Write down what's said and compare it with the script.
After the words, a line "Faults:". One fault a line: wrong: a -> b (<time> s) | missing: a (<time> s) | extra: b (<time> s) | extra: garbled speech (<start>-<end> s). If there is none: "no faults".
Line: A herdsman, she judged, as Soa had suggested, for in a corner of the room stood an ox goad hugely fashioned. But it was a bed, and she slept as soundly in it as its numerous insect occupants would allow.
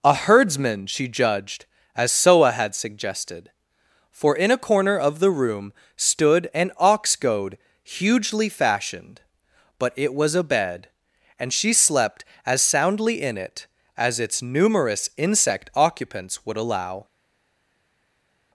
A herdsman, she judged, as Soa had suggested, for in a corner of the room stood an ox goad hugely fashioned. But it was a bed, and she slept as soundly in it as its numerous insect occupants would allow.
Faults:
no faults